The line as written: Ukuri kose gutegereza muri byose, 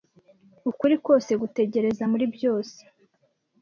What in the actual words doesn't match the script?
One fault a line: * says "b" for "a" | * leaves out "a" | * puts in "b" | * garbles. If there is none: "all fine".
all fine